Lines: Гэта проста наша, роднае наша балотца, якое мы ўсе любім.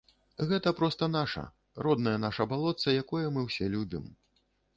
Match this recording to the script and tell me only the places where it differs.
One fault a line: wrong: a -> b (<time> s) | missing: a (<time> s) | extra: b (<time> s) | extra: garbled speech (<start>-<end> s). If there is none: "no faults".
no faults